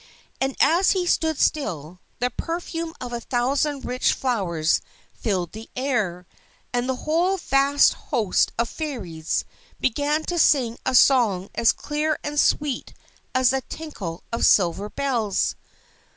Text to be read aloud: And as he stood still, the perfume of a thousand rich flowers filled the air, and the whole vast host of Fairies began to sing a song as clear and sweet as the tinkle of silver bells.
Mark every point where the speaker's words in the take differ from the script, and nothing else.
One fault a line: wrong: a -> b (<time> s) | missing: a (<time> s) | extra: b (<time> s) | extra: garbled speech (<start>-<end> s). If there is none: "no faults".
no faults